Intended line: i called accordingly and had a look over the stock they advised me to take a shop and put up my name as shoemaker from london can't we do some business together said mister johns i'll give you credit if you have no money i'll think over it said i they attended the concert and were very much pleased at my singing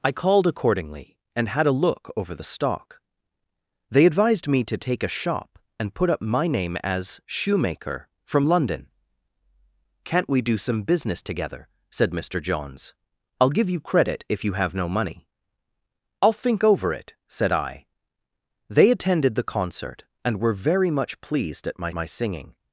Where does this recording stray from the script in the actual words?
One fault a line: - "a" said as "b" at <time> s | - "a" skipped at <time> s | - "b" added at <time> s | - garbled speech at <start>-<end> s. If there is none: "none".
- "my" added at 21.9 s